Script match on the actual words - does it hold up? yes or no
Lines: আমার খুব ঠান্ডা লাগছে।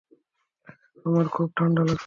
yes